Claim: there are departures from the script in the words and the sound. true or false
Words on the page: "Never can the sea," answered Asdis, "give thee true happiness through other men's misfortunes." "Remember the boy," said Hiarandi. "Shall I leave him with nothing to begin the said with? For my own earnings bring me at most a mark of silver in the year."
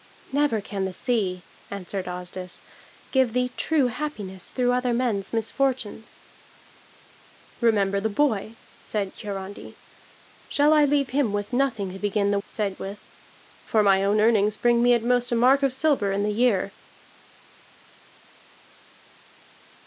false